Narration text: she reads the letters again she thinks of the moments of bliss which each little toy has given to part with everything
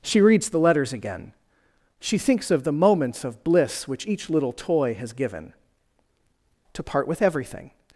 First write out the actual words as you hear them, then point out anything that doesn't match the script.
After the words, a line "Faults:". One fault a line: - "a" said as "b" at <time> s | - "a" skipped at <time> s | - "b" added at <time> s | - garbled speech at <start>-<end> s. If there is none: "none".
she reads the letters again she thinks of the moments of bliss which each little toy has given to part with everything
Faults:
none